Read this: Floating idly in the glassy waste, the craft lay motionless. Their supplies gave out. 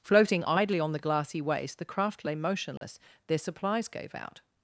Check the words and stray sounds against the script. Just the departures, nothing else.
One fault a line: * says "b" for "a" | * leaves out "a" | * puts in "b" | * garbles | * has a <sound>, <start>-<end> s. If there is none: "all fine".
* says "on" for "in"
* has a dropout, 2.8-2.8 s